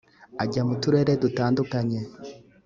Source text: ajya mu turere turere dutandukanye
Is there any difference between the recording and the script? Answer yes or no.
yes